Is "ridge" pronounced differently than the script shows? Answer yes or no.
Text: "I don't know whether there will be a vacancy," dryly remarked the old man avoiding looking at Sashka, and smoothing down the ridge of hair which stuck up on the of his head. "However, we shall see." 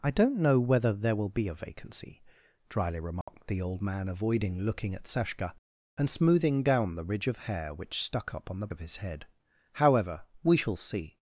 no